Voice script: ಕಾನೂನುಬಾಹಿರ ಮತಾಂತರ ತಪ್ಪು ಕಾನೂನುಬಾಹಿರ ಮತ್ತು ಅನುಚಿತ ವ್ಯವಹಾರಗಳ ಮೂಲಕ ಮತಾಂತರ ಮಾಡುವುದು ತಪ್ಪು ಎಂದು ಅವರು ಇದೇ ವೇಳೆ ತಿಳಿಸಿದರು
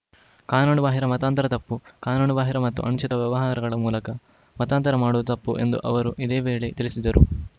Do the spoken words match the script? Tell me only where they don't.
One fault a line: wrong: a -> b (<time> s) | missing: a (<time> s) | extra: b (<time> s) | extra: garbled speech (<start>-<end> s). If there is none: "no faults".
no faults